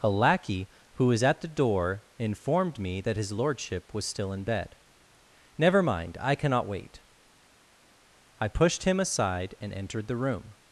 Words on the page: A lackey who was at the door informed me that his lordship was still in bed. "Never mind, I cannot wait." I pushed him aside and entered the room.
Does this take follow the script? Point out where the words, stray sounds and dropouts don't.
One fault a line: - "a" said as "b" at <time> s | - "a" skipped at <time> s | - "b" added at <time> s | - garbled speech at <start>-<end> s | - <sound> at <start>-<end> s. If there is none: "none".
none